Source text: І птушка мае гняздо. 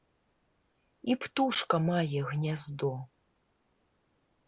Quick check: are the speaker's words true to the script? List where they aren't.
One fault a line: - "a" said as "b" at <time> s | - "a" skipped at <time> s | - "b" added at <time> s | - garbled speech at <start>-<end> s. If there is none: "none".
none